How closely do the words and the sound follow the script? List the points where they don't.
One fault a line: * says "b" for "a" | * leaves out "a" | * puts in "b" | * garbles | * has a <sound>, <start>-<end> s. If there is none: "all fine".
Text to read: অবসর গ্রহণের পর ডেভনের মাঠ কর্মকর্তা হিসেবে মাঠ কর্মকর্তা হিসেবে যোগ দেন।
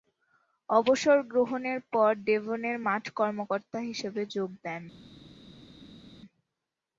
* leaves out "মাঠ কর্মকর্তা হিসেবে"